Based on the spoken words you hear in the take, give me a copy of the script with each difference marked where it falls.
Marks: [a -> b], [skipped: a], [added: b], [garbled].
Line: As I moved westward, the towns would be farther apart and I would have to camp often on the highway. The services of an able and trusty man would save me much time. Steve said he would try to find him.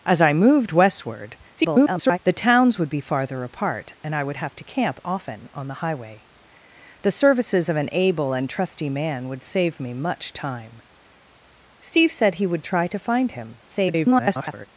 As I moved westward, [garbled] the towns would be farther apart and I would have to camp often on the highway. The services of an able and trusty man would save me much time. Steve said he would try to find him. [garbled]